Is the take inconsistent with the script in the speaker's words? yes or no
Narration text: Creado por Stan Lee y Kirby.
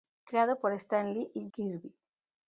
no